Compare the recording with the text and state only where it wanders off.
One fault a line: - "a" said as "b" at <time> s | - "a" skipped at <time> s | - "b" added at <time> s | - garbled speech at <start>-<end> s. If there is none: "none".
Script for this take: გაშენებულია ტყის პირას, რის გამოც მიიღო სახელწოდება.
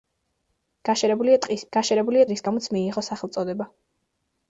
- "პირას" said as "გაშენებულია" at 1.8 s